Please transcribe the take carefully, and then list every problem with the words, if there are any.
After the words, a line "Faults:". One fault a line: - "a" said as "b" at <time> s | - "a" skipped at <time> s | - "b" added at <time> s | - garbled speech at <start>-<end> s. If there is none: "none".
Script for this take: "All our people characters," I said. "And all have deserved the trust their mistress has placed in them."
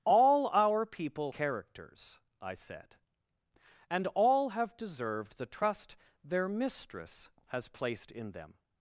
"All our people characters," I said. "And all have deserved the trust their mistress has placed in them."
Faults:
none